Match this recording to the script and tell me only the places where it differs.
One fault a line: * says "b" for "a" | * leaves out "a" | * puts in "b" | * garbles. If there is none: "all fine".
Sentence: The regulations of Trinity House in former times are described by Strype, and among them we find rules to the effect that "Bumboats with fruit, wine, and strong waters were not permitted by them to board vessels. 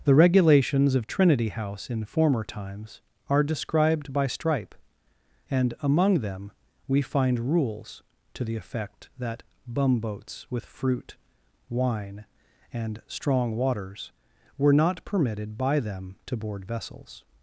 all fine